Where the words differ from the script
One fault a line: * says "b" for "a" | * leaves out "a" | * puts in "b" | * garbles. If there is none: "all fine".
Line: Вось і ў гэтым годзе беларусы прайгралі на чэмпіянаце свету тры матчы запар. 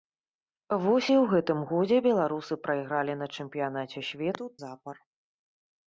* leaves out "тры матчы"